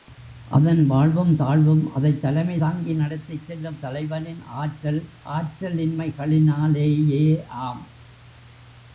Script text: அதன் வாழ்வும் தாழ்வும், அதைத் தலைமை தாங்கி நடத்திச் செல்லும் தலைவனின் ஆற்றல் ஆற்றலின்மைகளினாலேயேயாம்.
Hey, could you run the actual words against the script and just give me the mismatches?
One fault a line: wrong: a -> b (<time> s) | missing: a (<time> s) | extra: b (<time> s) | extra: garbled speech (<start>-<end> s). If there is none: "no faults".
no faults